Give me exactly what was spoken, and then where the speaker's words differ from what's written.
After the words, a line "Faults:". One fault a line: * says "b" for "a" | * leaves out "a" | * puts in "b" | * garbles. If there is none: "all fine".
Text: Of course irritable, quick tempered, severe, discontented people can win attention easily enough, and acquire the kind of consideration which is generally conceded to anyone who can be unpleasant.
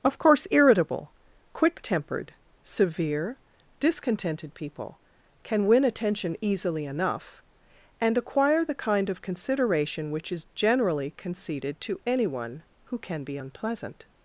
Of course irritable, quick tempered, severe, discontented people can win attention easily enough, and acquire the kind of consideration which is generally conceded to anyone who can be unpleasant.
Faults:
all fine